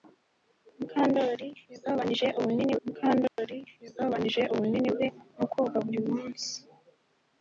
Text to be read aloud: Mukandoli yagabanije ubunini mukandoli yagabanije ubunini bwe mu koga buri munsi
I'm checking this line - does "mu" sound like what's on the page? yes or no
yes